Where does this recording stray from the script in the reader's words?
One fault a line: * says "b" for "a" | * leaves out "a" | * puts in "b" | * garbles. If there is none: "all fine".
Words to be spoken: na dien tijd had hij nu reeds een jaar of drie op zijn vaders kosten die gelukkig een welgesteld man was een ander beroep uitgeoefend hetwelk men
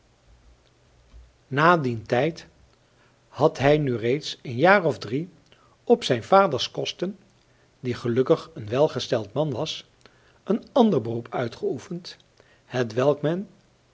all fine